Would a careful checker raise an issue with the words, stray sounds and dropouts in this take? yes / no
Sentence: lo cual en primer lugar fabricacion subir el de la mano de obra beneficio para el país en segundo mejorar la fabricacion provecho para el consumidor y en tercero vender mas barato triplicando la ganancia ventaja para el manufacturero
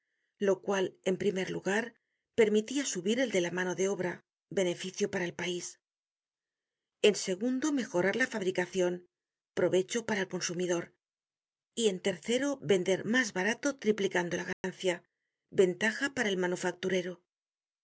yes